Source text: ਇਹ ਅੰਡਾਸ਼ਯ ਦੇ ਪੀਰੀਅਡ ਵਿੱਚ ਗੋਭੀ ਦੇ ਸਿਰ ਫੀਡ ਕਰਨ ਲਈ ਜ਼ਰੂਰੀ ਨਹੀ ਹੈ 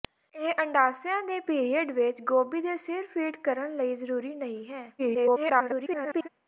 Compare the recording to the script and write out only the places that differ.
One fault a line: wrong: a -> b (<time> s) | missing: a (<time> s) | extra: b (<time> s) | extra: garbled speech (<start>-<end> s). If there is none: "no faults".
extra: garbled speech (5.0-6.3 s)